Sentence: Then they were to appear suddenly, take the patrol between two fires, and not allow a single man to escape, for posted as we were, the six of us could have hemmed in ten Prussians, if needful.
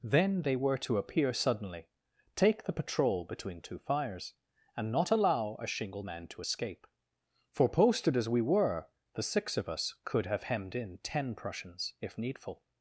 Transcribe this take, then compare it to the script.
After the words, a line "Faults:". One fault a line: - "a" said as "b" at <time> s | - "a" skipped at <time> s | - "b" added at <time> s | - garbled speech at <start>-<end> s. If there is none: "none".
Then they were to appear suddenly, take the patrol between two fires, and not allow a shingle man to escape, for posted as we were, the six of us could have hemmed in ten Prussians, if needful.
Faults:
- "single" said as "shingle" at 5.7 s